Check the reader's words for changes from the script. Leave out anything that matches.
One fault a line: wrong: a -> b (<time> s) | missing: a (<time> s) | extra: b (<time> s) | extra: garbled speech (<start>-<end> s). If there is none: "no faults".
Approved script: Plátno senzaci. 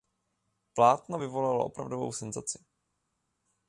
extra: vyvolalo opravdovou (1.2 s)